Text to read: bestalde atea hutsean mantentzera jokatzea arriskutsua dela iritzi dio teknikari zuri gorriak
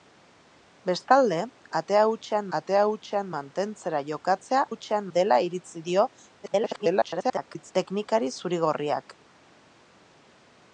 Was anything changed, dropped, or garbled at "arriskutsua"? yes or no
yes